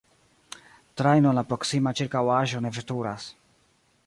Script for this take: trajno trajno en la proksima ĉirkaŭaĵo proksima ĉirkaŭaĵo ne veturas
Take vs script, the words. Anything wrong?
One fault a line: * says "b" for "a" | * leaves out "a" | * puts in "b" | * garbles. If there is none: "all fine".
* leaves out "trajno"
* leaves out "proksima ĉirkaŭaĵo"